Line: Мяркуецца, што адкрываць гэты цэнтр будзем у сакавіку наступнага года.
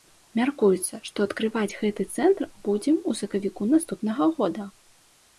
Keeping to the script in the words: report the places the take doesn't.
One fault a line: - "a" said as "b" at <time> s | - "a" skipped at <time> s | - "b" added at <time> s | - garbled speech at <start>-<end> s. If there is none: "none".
none